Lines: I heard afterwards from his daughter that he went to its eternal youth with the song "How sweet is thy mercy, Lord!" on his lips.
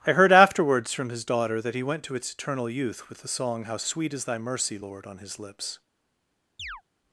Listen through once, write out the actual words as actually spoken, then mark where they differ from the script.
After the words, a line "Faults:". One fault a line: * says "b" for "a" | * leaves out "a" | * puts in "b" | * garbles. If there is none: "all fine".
I heard afterwards from his daughter that he went to its eternal youth with the song "How sweet is thy mercy, Lord!" on his lips.
Faults:
all fine